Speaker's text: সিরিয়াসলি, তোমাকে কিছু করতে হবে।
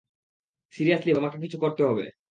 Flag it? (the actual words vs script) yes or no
no